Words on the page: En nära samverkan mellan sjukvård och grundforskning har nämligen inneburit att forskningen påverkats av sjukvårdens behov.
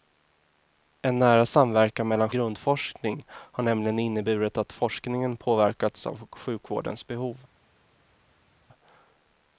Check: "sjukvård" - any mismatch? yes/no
yes